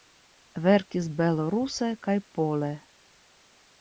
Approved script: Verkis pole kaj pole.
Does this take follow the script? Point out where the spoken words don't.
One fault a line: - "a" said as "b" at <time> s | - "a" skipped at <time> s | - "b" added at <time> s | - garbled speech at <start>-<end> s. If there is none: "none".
- "pole" said as "beloruse" at 1.2 s